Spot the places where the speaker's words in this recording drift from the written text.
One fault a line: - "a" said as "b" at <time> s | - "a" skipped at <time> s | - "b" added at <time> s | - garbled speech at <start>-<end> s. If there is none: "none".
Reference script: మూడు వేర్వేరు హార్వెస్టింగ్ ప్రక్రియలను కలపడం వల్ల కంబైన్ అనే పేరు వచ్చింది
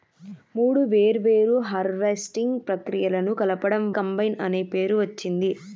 - "వల్ల" skipped at 3.9 s